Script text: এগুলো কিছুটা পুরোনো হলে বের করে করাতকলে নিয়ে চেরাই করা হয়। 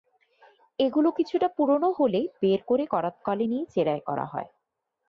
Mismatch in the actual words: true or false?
false